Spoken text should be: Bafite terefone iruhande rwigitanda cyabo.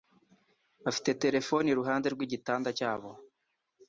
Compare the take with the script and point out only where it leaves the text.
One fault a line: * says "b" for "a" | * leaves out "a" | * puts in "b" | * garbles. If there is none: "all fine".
all fine